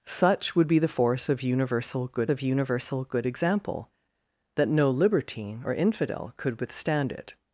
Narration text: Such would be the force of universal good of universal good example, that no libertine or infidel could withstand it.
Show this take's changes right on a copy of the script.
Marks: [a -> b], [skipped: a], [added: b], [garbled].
Such would be the force of universal good of universal good example, that no libertine or infidel could withstand it.